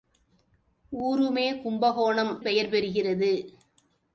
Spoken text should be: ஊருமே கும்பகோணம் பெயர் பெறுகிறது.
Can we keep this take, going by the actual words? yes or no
yes